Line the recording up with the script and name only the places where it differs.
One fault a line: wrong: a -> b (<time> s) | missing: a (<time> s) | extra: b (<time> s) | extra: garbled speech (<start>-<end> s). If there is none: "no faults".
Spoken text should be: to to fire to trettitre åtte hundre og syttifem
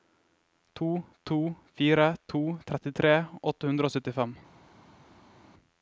no faults